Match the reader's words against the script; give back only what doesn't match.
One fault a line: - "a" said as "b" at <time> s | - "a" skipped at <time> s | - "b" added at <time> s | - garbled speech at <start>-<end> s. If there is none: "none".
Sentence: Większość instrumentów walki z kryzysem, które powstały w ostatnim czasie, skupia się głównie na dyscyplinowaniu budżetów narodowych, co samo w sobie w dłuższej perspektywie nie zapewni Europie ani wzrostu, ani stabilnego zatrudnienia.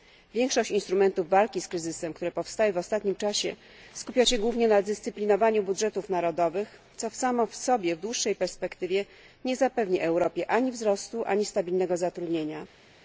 none